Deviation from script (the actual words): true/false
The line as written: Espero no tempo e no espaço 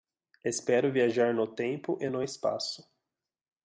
true